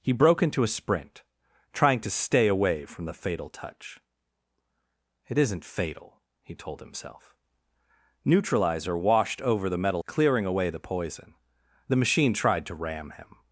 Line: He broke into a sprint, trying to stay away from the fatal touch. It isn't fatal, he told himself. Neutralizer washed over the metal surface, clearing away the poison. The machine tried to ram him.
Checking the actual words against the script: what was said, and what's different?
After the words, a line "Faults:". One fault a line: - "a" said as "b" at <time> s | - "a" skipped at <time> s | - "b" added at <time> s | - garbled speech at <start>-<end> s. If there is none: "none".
He broke into a sprint, trying to stay away from the fatal touch. It isn't fatal, he told himself. Neutralizer washed over the metal clearing away the poison. The machine tried to ram him.
Faults:
- "surface" skipped at 10.0 s